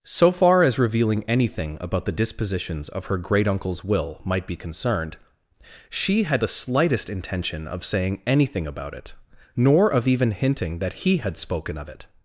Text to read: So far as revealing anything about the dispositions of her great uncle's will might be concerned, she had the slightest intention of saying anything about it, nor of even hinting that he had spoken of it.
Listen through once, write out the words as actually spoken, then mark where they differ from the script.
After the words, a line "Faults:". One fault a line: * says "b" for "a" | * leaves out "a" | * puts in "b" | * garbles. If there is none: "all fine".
So far as revealing anything about the dispositions of her great uncle's will might be concerned, she had the slightest intention of saying anything about it, nor of even hinting that he had spoken of it.
Faults:
all fine